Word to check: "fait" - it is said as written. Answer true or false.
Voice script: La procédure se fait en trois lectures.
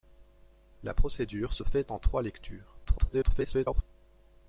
true